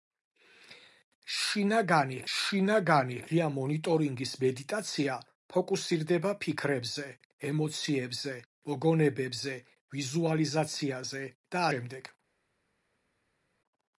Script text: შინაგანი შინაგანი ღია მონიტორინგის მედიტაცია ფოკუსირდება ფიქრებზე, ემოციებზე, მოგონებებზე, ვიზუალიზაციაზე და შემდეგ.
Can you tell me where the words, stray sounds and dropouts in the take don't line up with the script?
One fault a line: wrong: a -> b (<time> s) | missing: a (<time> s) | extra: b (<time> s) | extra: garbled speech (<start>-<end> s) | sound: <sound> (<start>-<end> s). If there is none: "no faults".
no faults